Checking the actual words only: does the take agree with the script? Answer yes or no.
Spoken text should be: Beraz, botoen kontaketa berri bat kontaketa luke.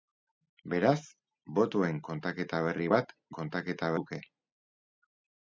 yes